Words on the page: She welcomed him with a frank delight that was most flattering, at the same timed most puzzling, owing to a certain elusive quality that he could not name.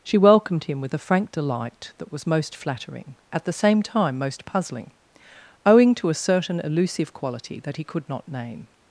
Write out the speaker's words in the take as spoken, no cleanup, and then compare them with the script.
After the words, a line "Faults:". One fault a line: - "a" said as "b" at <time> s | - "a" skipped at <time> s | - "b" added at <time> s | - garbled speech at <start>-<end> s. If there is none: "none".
She welcomed him with a frank delight that was most flattering, at the same time most puzzling, owing to a certain elusive quality that he could not name.
Faults:
- "timed" said as "time" at 3.8 s